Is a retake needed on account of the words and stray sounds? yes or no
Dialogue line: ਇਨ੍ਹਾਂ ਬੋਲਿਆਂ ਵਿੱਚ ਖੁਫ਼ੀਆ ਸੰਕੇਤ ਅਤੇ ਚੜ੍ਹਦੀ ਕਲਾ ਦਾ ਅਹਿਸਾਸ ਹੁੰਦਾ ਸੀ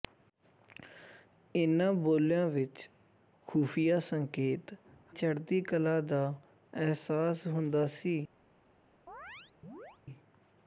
yes